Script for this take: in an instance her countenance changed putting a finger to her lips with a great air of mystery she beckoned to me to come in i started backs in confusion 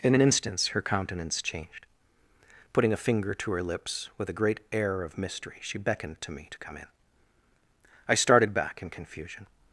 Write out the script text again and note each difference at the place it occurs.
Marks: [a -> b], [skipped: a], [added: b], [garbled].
in an instance her countenance changed putting a finger to her lips with a great air of mystery she beckoned to me to come in i started [backs -> back] in confusion